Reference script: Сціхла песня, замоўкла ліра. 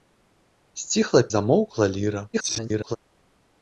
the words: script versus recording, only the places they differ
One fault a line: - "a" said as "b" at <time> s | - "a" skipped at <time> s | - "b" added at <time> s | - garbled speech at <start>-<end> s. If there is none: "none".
- "песня" skipped at 1.2 s
- garbled speech at 2.3-3.0 s